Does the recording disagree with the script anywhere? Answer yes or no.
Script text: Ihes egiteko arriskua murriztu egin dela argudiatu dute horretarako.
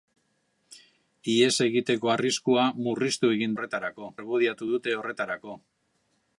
yes